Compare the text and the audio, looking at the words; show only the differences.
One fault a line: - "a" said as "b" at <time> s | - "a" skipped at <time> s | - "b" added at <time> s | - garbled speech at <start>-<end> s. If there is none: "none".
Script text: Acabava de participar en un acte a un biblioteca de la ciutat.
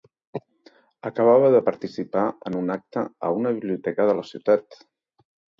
- "un" said as "una" at 3.4 s